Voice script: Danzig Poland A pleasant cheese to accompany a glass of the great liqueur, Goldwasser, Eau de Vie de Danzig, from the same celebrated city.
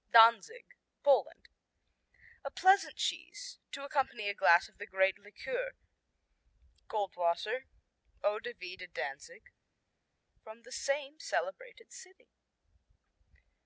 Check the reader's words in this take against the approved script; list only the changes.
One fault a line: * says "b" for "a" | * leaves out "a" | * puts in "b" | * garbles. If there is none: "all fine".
all fine